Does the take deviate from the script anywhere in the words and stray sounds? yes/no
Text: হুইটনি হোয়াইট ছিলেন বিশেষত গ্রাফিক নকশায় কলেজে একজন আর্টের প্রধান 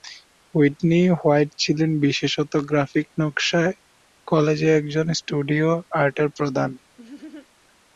yes